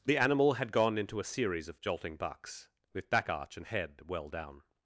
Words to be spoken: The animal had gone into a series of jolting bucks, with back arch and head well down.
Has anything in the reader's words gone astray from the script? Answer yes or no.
no